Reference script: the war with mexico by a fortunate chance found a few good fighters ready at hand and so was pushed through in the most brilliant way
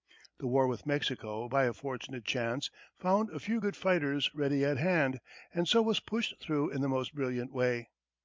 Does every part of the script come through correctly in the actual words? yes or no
yes